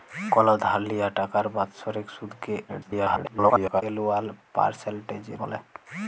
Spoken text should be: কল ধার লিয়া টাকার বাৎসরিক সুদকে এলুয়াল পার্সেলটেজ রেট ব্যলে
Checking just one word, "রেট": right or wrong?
wrong